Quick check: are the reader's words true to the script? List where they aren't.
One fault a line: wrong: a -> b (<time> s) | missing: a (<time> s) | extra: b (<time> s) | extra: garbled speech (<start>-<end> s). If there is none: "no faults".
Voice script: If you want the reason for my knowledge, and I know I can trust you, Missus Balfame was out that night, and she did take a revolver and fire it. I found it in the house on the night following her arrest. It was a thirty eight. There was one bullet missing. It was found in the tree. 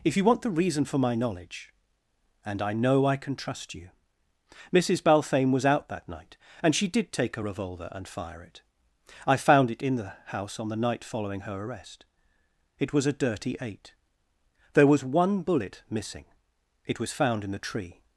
wrong: thirty -> dirty (13.1 s)